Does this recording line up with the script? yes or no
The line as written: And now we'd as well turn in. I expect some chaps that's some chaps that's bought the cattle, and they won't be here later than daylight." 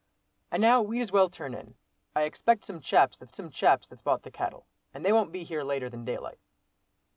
yes